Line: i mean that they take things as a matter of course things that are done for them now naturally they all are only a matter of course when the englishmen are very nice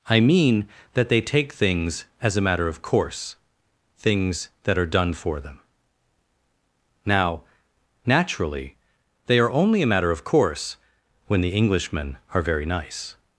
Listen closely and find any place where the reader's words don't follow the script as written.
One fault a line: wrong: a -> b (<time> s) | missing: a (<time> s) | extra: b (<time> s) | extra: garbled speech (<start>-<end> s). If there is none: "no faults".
missing: all (9.4 s)